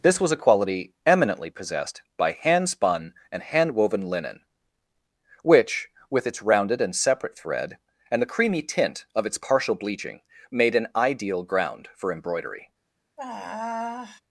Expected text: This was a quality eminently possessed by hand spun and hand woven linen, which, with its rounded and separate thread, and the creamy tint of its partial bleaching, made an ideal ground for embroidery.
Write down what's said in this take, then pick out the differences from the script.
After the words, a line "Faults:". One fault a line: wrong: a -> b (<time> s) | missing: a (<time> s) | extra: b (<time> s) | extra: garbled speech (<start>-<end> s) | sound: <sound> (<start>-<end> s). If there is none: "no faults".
This was a quality eminently possessed by hand spun and hand woven linen, which, with its rounded and separate thread, and the creamy tint of its partial bleaching, made an ideal ground for embroidery.
Faults:
sound: sigh (13.2-14.2 s)